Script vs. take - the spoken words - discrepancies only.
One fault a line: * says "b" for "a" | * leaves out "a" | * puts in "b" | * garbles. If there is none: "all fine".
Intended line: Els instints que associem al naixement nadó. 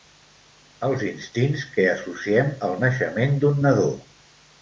* puts in "d'un"